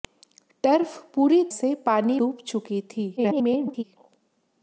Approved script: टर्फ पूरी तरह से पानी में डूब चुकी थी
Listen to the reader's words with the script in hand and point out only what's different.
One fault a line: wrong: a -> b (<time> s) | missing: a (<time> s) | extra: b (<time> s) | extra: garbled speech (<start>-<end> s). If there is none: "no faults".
missing: तरह (1.4 s)
missing: में (2.2 s)
extra: garbled speech (3.2-3.8 s)